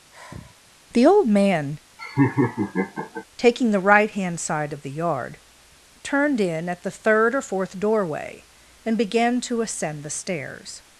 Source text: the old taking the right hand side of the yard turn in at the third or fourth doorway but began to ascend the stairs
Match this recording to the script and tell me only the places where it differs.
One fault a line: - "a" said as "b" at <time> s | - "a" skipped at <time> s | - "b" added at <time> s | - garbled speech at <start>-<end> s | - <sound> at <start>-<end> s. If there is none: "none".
- sigh at 0.1-0.7 s
- "man" added at 1.3 s
- laugh at 2.0-3.2 s
- "turn" said as "turned" at 6.0 s
- "but" said as "and" at 8.8 s